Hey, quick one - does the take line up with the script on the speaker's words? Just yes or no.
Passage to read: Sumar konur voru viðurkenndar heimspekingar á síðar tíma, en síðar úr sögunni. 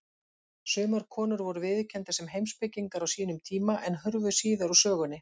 no